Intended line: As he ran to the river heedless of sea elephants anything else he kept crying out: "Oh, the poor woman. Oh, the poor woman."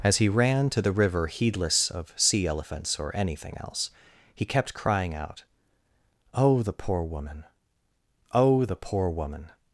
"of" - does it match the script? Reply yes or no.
yes